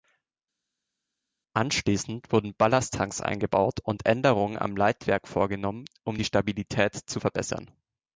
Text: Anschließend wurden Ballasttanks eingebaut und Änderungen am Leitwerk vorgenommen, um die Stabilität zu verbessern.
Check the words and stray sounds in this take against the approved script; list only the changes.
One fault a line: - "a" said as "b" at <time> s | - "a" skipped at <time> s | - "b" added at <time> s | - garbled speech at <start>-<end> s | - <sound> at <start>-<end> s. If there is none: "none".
none